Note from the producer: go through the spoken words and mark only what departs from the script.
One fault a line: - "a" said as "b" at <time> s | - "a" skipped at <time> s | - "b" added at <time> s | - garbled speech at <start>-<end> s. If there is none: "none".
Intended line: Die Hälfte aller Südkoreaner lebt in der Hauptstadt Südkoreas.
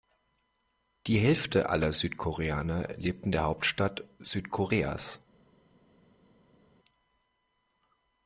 none